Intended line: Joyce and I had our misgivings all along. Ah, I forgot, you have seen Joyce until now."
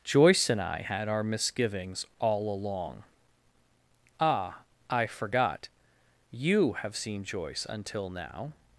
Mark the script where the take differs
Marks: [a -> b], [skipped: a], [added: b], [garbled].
Joyce and I had our misgivings all along. Ah, I forgot, you have seen Joyce until now."